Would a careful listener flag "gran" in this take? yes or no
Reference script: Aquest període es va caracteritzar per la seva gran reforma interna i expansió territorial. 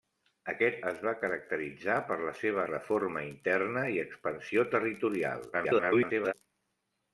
yes